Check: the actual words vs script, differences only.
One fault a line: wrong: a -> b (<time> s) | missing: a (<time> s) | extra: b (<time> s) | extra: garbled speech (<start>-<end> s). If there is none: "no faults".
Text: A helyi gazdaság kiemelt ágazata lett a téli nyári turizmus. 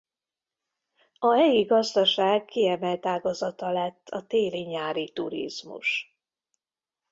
no faults